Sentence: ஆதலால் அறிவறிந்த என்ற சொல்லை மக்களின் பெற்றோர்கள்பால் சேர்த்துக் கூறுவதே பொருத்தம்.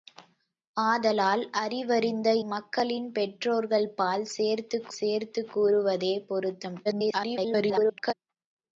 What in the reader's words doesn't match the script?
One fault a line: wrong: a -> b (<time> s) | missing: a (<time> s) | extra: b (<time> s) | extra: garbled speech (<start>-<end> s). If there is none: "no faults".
missing: என்ற சொல்லை (2.3 s)
extra: சேர்த்துக் (5.0 s)
extra: garbled speech (6.8-8.1 s)